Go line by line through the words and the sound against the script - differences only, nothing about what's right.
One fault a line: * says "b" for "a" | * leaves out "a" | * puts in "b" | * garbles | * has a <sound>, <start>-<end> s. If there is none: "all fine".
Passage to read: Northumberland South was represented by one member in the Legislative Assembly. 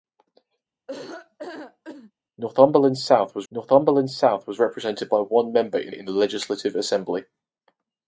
* has a laugh, 0.9-2.1 s
* puts in "northumberland South was"
* puts in "in"